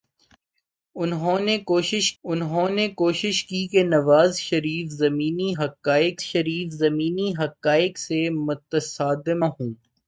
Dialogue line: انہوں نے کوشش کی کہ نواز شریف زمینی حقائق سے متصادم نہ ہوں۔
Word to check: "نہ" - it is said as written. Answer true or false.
false